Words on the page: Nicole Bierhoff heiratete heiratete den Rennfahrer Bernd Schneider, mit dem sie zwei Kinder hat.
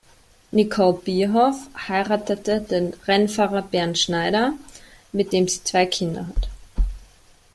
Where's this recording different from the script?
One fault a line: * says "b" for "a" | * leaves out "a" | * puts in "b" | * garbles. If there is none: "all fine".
* leaves out "heiratete"